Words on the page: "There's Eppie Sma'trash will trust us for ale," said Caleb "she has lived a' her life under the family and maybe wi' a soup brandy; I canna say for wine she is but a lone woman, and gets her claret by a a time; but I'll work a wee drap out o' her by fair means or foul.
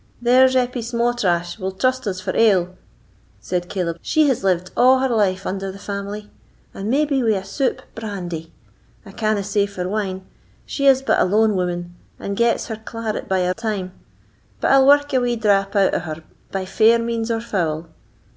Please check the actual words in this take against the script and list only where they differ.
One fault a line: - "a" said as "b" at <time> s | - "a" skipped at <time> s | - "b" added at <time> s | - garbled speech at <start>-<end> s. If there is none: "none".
none